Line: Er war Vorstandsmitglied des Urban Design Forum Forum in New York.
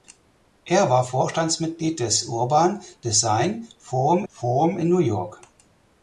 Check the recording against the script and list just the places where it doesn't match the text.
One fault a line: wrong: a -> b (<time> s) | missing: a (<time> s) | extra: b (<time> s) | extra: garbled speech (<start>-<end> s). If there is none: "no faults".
no faults